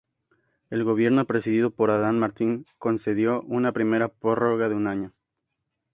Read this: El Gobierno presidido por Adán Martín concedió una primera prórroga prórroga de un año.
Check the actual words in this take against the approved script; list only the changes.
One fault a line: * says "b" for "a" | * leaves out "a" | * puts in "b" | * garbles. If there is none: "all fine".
* leaves out "prórroga"